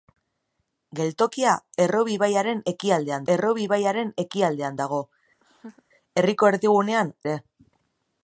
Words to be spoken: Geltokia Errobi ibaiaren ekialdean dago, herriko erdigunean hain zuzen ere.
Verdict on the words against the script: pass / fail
fail